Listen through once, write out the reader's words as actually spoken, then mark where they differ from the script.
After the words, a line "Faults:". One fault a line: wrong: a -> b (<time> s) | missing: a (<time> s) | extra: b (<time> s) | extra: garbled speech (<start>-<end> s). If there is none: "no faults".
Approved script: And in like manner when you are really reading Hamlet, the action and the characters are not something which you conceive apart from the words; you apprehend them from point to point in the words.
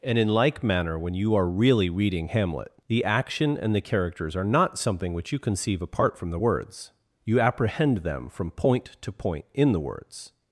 And in like manner when you are really reading Hamlet, the action and the characters are not something which you conceive apart from the words; you apprehend them from point to point in the words.
Faults:
no faults